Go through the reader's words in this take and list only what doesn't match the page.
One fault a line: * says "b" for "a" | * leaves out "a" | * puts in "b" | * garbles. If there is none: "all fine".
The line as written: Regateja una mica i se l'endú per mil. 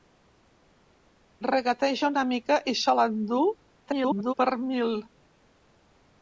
* garbles